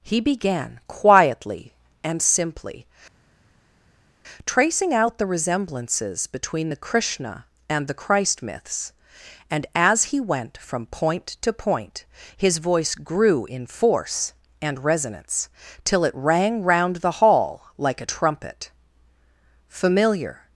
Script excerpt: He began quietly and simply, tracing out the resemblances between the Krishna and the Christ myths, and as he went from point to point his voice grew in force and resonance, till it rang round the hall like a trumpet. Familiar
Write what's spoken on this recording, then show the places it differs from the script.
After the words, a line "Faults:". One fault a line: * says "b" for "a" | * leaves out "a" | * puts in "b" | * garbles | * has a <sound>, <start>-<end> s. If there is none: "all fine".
He began quietly and simply, tracing out the resemblances between the Krishna and the Christ myths, and as he went from point to point his voice grew in force and resonance, till it rang round the hall like a trumpet. Familiar
Faults:
all fine